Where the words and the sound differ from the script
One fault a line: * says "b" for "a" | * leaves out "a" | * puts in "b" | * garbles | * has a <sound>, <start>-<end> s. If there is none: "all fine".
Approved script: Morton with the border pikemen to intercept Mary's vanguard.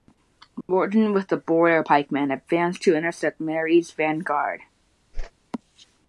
* has a dropout, 0.6-0.7 s
* puts in "advanced"
* has a whoosh, 5.1-5.3 s